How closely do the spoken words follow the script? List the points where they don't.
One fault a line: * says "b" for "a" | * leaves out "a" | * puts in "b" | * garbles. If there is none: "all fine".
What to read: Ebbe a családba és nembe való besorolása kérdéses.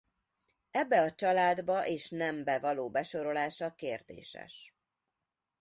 all fine